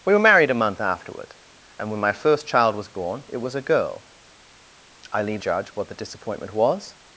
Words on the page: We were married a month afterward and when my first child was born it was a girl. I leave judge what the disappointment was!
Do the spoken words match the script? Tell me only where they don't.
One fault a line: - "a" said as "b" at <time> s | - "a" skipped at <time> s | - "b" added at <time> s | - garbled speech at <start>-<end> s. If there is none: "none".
none